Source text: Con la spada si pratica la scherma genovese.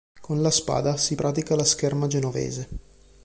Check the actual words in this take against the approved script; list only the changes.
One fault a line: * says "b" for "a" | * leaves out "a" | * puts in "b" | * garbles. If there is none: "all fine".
all fine